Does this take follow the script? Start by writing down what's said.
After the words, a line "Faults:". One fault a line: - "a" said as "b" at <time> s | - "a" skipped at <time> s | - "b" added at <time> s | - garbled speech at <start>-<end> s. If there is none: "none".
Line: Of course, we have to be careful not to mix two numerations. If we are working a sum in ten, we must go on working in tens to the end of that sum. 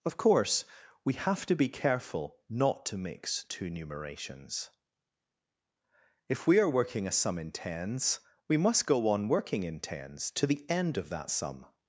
Of course, we have to be careful not to mix two numerations. If we are working a sum in tens, we must go on working in tens to the end of that sum.
Faults:
- "ten" said as "tens" at 7.5 s